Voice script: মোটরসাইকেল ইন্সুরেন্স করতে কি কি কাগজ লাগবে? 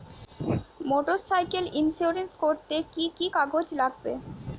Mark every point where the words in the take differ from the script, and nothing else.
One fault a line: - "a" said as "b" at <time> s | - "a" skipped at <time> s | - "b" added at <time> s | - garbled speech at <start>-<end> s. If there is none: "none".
none